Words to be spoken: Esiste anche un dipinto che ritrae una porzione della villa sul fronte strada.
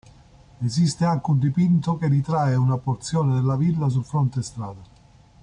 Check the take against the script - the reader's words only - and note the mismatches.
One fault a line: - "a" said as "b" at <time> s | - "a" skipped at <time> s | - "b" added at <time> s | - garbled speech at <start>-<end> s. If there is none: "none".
none